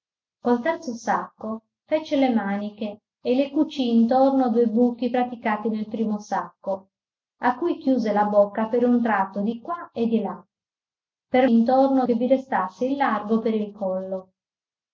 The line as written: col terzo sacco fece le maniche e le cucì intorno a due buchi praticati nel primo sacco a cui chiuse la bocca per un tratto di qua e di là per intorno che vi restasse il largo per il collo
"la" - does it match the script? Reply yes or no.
yes